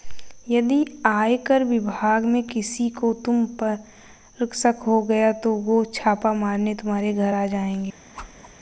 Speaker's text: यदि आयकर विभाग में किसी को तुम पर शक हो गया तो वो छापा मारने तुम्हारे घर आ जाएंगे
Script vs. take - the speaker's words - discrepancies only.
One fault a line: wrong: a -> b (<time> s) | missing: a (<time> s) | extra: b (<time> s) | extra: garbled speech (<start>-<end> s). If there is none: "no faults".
no faults